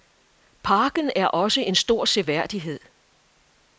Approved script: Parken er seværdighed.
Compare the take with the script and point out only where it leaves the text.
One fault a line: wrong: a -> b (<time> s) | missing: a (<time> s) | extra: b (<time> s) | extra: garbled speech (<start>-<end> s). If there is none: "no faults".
extra: også en stor (1.3 s)